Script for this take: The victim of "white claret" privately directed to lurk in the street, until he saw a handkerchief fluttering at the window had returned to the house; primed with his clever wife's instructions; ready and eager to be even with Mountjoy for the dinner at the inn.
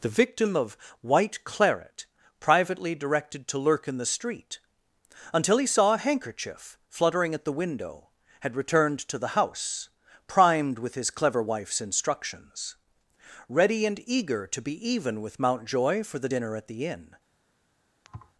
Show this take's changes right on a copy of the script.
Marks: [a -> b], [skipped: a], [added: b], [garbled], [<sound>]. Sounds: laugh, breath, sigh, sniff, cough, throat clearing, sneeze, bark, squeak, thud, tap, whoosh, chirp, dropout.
The victim of "white claret" privately directed to lurk in the street, until he saw a handkerchief fluttering at the window had returned to the house; primed with his clever wife's instructions; ready and eager to be even with Mountjoy for the dinner at the inn. [thud]